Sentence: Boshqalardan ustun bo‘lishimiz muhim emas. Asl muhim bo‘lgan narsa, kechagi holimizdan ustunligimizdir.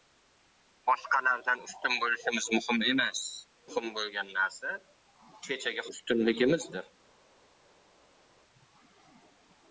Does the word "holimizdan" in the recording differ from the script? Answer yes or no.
yes